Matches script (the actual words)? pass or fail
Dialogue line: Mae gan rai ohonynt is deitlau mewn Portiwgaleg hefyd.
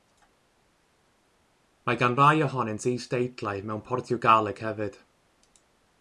pass